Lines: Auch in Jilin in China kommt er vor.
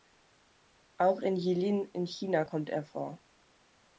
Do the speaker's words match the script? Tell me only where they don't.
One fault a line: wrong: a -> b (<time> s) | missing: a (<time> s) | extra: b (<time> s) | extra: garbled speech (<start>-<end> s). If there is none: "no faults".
no faults